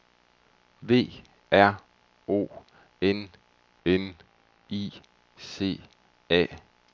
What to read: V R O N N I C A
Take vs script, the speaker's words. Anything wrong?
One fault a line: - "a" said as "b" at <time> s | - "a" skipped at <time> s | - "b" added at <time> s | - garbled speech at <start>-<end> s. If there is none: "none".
none